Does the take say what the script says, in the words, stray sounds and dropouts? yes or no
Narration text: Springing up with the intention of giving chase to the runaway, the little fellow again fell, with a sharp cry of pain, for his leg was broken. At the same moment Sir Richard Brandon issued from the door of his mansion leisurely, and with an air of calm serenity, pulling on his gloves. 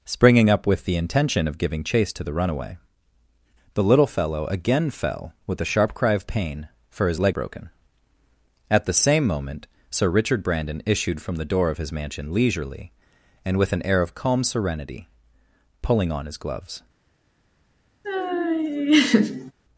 no